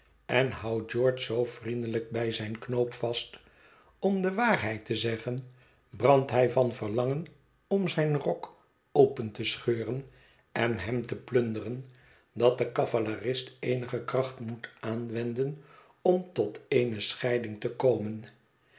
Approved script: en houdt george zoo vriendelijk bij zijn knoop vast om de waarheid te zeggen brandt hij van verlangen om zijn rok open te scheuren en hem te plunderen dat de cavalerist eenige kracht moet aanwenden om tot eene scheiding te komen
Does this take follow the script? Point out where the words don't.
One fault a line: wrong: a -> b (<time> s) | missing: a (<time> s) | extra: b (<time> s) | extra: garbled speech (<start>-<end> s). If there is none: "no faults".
no faults